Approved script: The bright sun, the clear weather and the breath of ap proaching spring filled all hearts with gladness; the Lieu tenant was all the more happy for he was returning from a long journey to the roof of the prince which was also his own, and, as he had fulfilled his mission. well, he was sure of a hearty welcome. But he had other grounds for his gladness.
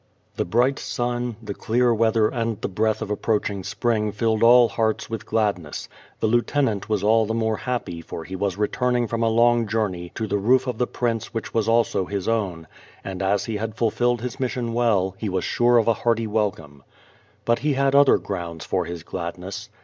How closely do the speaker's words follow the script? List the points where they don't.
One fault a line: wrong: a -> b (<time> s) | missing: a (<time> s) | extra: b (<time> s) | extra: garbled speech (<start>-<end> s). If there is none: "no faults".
no faults